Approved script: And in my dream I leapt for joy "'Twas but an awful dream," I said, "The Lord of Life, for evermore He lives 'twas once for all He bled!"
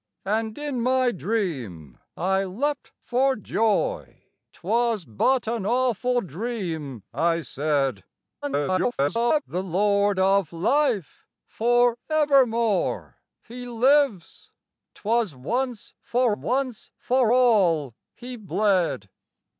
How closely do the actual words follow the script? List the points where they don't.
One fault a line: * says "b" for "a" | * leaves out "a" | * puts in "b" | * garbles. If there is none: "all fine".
* garbles
* puts in "once for"